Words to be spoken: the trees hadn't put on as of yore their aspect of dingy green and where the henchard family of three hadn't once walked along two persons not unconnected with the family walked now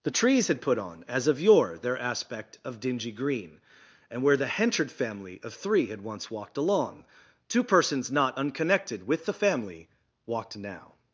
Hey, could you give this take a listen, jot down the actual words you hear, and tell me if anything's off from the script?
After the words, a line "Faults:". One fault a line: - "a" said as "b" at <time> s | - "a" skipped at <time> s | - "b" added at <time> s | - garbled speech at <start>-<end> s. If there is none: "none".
the trees had put on as of yore their aspect of dingy green and where the henchard family of three had once walked along two persons not unconnected with the family walked now
Faults:
- "hadn't" said as "had" at 0.5 s
- "hadn't" said as "had" at 5.9 s